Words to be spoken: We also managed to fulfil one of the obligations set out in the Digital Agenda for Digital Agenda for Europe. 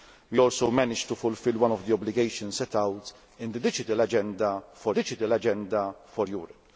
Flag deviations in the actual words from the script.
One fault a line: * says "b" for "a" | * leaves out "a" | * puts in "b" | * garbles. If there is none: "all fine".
all fine